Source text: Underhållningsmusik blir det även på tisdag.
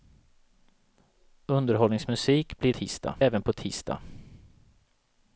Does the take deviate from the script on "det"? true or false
true